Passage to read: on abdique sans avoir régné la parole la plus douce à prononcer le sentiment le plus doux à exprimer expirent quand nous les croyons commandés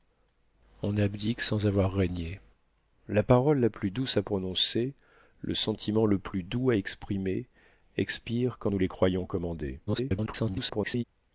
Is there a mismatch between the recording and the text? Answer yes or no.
yes